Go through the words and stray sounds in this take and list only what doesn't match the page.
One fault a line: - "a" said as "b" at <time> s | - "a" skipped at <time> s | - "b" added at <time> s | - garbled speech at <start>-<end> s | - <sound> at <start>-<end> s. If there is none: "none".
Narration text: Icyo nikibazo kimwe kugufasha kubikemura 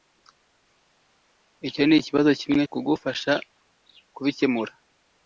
none